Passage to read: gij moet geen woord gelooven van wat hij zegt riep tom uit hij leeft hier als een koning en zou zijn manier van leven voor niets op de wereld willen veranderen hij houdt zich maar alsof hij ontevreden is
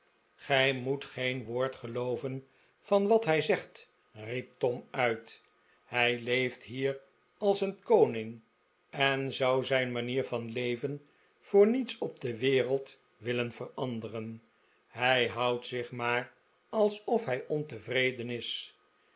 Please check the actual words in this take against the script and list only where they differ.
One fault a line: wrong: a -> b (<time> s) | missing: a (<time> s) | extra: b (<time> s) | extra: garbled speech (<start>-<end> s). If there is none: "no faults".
no faults